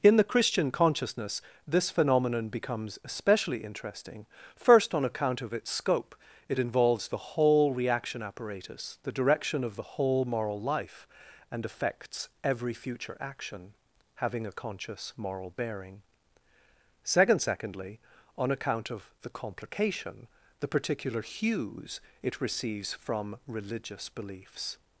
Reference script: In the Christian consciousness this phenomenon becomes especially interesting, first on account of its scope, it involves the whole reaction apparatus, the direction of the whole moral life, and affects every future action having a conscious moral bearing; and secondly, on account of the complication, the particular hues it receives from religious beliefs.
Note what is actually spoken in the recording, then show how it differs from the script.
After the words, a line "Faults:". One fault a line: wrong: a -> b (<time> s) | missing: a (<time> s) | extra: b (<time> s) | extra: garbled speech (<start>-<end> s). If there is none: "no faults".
In the Christian consciousness this phenomenon becomes especially interesting, first on account of its scope, it involves the whole reaction apparatus, the direction of the whole moral life, and affects every future action having a conscious moral bearing; second secondly, on account of the complication, the particular hues it receives from religious beliefs.
Faults:
wrong: and -> second (17.0 s)